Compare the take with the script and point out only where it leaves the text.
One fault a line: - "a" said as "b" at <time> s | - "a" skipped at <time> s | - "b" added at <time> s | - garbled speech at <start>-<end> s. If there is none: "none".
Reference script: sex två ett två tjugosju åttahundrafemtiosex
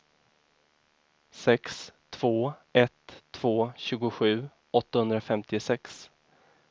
none